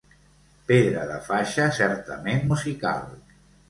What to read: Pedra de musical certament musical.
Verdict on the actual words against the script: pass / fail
fail